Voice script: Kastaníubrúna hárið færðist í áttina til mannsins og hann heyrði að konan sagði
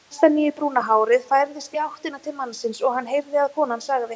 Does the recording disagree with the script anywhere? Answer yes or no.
no